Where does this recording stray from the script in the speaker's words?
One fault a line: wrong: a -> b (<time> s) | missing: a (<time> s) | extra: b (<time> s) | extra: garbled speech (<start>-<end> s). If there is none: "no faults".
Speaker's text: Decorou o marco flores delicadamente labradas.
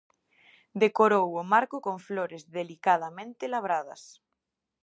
extra: con (1.8 s)